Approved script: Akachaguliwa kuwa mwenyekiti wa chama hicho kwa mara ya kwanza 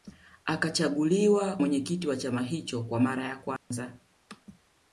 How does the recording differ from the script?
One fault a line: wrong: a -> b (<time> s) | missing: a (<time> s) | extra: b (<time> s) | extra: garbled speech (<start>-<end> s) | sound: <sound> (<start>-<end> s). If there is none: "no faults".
missing: kuwa (1.6 s)
sound: dropout (3.6-3.7 s)